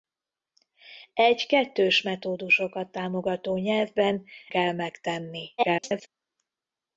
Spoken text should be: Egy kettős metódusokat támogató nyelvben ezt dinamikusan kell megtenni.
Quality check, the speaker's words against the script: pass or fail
fail